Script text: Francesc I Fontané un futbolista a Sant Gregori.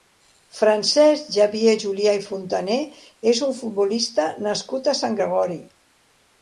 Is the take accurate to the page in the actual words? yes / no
no